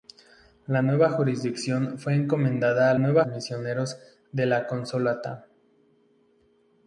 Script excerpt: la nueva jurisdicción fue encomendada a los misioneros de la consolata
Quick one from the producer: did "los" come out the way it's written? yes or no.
no